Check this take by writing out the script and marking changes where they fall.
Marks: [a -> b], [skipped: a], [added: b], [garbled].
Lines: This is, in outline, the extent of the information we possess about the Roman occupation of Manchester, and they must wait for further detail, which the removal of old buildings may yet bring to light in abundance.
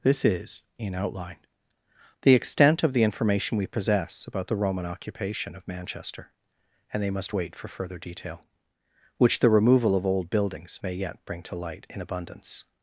This is, in outline, the extent of the information we possess about the Roman occupation of Manchester, and they must wait for further detail, which the removal of old buildings may yet bring to light in abundance.